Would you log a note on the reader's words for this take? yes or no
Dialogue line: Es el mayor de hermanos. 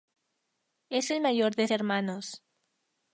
no